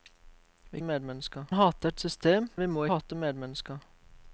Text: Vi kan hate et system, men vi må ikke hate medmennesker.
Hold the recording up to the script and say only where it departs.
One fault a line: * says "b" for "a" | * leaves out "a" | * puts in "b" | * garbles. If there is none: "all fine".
* says "medmennesker" for "kan"
* leaves out "men"
* leaves out "ikke"